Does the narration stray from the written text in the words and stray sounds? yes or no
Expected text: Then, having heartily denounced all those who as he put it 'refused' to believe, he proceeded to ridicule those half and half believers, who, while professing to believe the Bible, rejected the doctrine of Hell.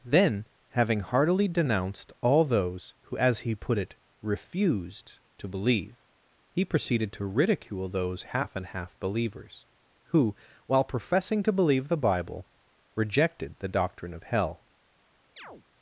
yes